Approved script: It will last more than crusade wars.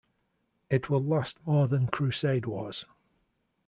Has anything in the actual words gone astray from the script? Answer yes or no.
no